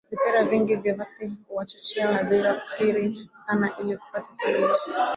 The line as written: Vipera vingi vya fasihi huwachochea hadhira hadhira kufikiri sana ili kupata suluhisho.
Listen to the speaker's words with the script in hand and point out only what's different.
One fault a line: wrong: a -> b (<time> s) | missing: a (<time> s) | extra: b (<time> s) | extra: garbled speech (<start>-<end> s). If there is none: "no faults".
missing: hadhira (2.5 s)